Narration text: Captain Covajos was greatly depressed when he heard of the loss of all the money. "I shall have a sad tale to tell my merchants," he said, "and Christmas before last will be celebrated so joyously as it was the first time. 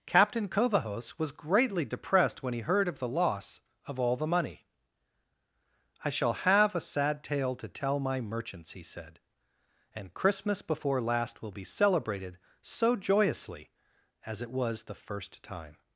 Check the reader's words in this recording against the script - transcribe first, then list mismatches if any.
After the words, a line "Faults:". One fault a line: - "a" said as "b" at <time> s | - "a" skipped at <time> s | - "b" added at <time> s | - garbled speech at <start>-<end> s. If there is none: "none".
Captain Covajos was greatly depressed when he heard of the loss of all the money. "I shall have a sad tale to tell my merchants," he said, "and Christmas before last will be celebrated so joyously as it was the first time.
Faults:
none